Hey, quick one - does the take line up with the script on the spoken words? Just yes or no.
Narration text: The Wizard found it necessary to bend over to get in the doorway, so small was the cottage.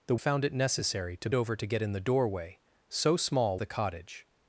no